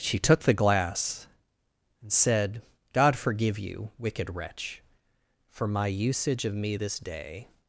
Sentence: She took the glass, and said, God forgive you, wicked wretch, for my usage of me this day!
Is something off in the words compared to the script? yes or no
no